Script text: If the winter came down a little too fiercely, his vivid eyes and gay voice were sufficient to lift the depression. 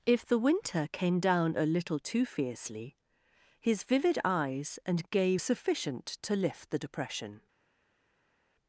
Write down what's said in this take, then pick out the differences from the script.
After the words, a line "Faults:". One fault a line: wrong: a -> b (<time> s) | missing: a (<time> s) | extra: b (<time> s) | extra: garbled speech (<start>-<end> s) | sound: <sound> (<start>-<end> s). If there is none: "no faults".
If the winter came down a little too fiercely, his vivid eyes and gay sufficient to lift the depression.
Faults:
missing: voice were (5.4 s)